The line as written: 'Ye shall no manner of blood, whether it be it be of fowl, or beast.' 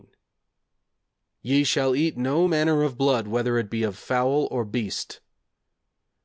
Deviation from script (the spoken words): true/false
true